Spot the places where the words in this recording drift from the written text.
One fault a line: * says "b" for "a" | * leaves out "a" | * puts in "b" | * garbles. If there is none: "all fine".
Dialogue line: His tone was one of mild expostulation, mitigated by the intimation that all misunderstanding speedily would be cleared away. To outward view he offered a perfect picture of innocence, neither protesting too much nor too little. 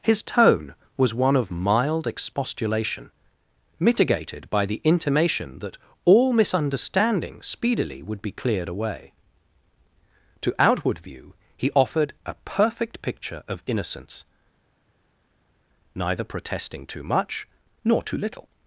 all fine